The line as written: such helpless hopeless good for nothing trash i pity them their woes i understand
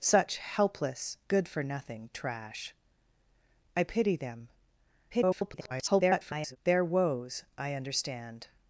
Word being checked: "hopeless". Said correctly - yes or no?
no